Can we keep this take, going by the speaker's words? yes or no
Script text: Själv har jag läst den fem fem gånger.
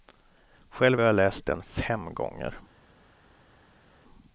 no